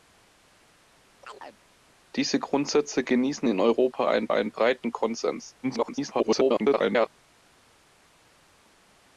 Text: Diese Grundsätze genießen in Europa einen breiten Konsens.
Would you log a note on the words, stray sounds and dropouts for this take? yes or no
yes